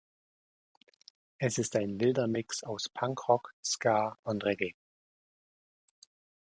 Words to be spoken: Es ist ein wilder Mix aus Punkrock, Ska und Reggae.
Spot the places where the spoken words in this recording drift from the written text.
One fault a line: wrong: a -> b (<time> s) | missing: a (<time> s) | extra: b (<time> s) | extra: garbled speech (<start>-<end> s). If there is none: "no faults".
no faults